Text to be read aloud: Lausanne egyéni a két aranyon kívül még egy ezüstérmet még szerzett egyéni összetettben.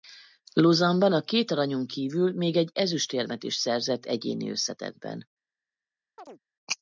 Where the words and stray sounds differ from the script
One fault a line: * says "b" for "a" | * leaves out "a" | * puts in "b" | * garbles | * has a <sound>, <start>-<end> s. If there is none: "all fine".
* says "ban" for "egyéni"
* says "is" for "még"
* has a chirp, 6.2-6.4 s